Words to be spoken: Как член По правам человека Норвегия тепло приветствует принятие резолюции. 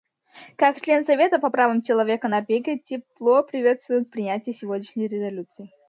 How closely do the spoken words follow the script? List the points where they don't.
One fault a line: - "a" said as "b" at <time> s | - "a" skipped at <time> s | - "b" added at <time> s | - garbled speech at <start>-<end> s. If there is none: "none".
- "Совета" added at 1.1 s
- "сегодняшней" added at 4.5 s